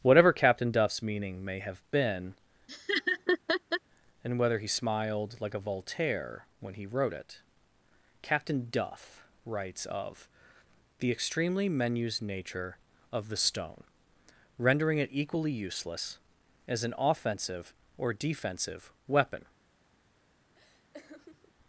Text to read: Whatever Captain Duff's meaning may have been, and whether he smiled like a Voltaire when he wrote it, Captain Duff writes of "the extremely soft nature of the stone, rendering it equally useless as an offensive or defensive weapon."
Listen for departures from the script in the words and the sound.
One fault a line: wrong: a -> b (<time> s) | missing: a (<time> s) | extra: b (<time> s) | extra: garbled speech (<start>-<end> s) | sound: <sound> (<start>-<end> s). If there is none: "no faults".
sound: laugh (2.7-3.8 s)
wrong: soft -> menus (11.7 s)
sound: laugh (20.5-21.6 s)